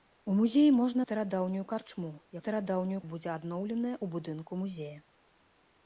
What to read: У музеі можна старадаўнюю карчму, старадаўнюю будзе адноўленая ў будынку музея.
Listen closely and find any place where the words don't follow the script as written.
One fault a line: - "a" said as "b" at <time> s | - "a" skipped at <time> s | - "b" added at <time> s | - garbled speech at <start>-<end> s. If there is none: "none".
none